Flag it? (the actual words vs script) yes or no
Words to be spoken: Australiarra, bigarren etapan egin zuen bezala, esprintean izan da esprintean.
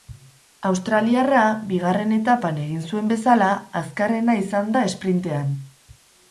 yes